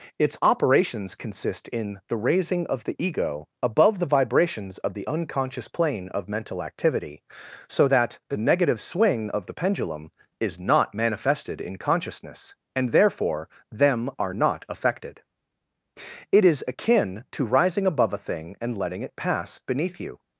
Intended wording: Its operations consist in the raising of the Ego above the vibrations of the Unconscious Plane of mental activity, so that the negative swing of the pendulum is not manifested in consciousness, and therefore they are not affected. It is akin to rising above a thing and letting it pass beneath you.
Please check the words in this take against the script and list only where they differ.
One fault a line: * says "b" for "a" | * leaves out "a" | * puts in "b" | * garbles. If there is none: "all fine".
* says "them" for "they"